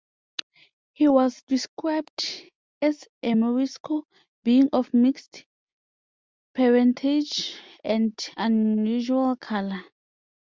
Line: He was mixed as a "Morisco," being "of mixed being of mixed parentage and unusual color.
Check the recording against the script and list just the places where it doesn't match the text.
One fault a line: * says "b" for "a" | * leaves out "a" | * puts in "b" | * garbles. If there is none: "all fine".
* says "described" for "mixed"
* leaves out "being of mixed"